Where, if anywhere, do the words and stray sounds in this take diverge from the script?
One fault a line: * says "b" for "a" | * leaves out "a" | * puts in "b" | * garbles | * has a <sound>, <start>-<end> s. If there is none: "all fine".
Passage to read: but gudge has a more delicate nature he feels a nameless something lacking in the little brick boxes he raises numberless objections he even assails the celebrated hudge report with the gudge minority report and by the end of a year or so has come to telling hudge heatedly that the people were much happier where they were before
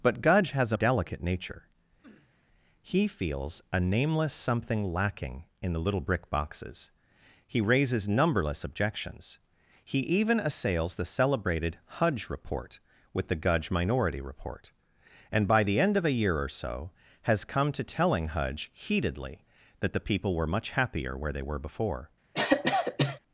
* leaves out "more"
* has a sniff, 2.0-2.3 s
* has a cough, 22.3-23.2 s